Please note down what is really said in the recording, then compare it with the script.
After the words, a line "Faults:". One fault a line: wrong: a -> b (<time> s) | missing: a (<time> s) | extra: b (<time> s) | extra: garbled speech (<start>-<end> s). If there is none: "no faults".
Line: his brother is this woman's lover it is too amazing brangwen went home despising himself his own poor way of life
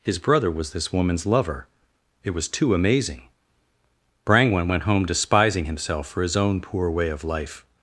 his brother was this woman's lover it was too amazing brangwen went home despising himself for his own poor way of life
Faults:
wrong: is -> was (0.5 s)
wrong: is -> was (2.3 s)
extra: for (6.1 s)